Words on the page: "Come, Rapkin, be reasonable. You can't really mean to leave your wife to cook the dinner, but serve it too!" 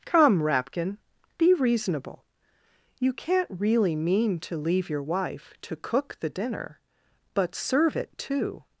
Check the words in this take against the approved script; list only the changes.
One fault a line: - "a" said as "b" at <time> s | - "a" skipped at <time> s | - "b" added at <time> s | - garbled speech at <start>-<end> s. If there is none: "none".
none